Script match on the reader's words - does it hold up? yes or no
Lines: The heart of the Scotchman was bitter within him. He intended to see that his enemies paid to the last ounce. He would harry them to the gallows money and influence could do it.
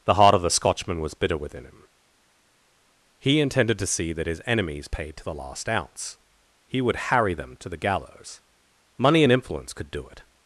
yes